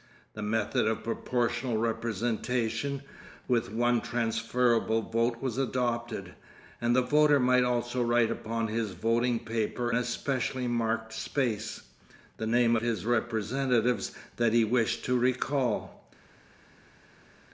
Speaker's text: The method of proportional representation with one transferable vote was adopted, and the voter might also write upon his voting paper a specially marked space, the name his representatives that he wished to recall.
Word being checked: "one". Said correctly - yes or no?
yes